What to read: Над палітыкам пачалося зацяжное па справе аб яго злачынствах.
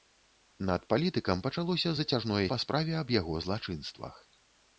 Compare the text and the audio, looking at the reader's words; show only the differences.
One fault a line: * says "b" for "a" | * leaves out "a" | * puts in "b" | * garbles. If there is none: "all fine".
all fine